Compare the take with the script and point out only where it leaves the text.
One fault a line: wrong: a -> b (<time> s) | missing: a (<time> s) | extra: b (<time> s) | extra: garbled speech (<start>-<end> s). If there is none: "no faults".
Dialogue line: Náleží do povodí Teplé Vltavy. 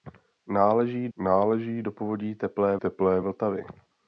extra: náleží (1.2 s)
extra: Teplé (2.7 s)